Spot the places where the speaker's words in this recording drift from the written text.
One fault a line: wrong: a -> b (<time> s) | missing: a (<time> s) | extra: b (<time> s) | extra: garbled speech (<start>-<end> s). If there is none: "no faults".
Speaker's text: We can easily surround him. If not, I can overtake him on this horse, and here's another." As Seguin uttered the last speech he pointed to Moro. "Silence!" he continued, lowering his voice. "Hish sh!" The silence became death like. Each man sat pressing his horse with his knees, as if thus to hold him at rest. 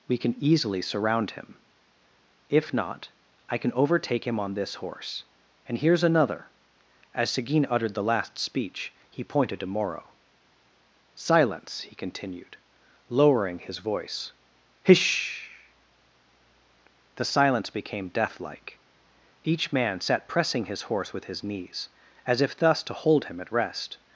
missing: sh (15.5 s)